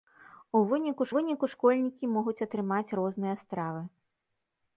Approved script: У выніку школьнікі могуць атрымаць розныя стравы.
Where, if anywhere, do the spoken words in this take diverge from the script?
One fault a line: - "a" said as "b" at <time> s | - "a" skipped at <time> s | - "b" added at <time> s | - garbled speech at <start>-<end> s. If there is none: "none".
- "выніку" added at 1.1 s